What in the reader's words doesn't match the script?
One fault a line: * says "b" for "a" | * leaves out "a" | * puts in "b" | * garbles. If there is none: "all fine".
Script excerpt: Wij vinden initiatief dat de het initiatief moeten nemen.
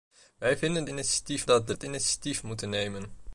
all fine